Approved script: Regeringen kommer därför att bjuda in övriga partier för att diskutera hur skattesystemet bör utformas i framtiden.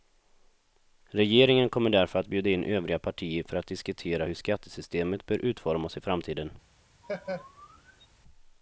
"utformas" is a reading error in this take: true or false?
false